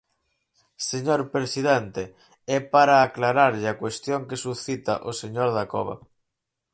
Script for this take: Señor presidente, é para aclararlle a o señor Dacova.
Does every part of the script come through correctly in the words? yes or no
no